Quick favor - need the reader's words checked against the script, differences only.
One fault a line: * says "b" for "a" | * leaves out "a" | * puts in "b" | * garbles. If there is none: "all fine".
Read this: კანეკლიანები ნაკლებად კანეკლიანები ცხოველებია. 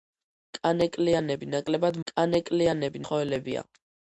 all fine